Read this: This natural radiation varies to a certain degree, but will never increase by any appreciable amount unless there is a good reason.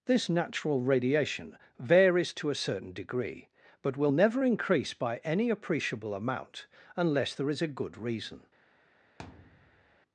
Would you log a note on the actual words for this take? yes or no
no